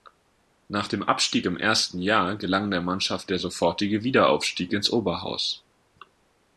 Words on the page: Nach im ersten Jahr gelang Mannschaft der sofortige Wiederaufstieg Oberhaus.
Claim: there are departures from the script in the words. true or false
true